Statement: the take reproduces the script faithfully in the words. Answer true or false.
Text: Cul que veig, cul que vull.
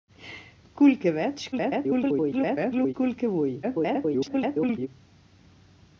false